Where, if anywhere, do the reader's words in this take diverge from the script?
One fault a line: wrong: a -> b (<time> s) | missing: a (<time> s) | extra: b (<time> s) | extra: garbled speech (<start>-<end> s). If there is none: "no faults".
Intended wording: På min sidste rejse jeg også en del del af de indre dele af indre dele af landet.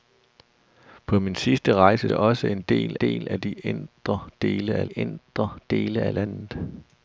no faults